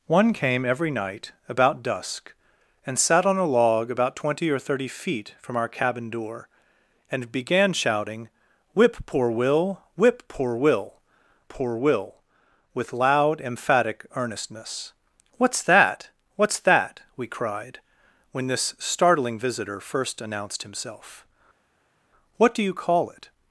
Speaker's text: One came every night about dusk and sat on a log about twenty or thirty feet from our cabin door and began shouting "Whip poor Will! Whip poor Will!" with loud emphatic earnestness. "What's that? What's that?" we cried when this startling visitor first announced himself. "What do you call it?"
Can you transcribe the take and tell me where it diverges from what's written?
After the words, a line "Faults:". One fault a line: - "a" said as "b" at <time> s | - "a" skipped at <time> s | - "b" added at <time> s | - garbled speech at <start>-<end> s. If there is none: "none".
One came every night about dusk and sat on a log about twenty or thirty feet from our cabin door and began shouting "Whip poor Will! Whip poor Will poor Will!" with loud emphatic earnestness. "What's that? What's that?" we cried when this startling visitor first announced himself. "What do you call it?"
Faults:
- "poor Will" added at 11.5 s